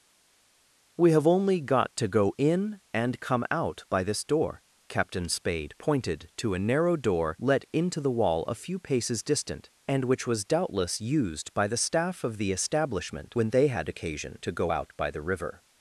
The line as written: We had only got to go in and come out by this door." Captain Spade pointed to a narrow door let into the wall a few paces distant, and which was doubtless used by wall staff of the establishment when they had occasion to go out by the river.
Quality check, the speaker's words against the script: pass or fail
fail